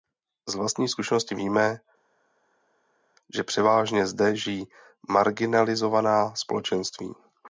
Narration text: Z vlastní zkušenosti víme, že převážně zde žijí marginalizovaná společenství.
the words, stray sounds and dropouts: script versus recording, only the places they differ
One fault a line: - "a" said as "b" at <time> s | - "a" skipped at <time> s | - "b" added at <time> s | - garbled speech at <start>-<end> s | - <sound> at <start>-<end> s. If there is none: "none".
none